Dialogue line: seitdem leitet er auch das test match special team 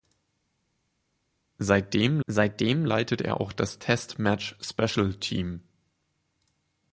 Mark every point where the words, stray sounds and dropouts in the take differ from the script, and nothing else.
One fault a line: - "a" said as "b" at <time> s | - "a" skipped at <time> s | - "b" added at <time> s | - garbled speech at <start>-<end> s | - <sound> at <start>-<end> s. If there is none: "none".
- "seitdem" added at 2.3 s